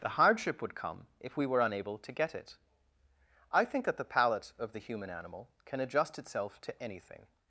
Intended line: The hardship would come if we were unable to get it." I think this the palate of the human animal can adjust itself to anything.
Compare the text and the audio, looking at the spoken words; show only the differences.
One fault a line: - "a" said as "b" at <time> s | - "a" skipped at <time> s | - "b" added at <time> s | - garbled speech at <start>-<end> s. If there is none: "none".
- "this" said as "that" at 3.9 s